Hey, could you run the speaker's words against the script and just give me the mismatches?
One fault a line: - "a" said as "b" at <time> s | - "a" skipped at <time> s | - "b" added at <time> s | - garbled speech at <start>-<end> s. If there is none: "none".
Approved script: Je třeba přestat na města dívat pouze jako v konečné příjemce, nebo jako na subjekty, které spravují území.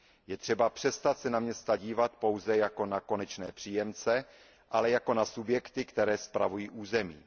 - "se" added at 1.2 s
- "v" said as "na" at 2.9 s
- "nebo" said as "ale" at 4.7 s